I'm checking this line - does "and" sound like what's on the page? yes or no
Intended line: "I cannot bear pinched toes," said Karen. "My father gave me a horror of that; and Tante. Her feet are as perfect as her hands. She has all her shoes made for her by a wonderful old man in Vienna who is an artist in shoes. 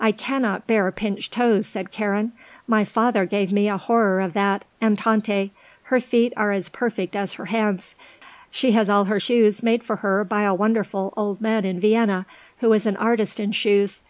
yes